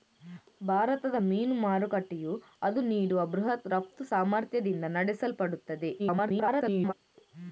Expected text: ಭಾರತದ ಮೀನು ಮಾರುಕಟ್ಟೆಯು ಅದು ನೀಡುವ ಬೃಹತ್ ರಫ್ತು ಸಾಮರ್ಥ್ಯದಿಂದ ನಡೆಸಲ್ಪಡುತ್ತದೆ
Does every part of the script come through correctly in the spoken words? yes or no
no